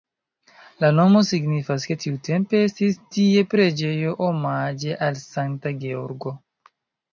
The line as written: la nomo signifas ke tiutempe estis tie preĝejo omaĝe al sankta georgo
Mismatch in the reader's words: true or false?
false